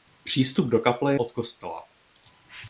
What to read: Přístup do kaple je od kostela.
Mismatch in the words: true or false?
true